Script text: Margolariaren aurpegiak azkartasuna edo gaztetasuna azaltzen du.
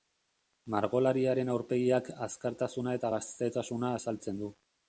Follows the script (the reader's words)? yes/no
no